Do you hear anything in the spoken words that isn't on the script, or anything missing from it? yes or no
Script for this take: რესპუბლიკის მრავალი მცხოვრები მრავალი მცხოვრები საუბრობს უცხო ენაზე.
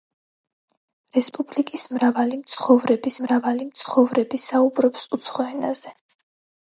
no